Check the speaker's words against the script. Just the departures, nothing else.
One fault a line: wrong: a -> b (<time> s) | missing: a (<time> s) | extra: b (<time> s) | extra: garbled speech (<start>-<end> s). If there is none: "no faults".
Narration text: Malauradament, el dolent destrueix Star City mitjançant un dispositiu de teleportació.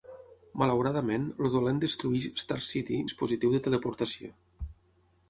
missing: mitjançant un (3.0 s)